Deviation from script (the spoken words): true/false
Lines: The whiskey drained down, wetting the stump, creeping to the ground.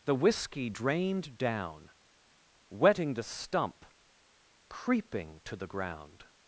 false